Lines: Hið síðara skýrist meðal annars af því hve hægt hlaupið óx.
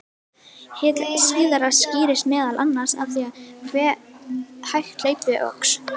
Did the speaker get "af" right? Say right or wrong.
right